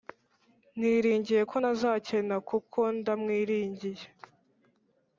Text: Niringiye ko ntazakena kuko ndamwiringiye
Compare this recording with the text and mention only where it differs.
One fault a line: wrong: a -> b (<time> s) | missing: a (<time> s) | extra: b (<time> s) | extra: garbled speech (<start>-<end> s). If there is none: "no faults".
no faults